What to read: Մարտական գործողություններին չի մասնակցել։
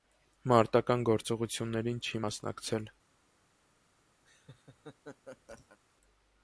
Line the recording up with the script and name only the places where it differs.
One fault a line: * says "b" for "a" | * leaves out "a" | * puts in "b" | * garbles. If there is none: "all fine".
all fine